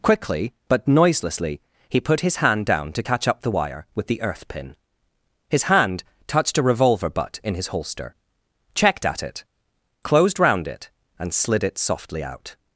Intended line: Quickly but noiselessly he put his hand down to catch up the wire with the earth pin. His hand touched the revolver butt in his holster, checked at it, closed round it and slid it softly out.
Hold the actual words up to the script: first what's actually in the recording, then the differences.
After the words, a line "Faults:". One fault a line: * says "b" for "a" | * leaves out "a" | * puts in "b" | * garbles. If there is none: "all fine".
Quickly but noiselessly he put his hand down to catch up the wire with the earth pin. His hand touched a revolver butt in his holster, checked at it, closed round it and slid it softly out.
Faults:
* says "a" for "the"